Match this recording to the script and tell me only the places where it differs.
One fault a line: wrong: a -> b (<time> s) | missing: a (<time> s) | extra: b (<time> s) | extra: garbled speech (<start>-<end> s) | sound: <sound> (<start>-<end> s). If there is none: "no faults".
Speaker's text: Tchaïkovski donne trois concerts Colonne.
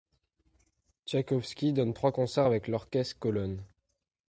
extra: avec l'orchestre (2.4 s)